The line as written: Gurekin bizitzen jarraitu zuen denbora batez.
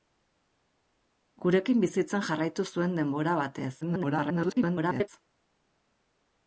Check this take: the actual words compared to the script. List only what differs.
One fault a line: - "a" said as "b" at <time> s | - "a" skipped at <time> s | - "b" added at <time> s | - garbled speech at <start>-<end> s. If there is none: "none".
- garbled speech at 3.8-5.1 s